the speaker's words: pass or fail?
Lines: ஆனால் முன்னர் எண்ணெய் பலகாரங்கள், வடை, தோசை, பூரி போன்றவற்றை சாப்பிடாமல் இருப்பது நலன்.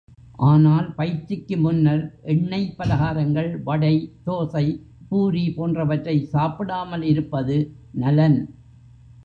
fail